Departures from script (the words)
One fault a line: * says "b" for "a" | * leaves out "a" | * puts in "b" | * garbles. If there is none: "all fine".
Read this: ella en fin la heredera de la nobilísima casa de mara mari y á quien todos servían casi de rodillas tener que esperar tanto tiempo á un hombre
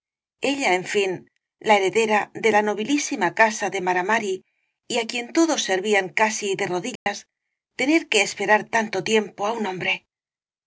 all fine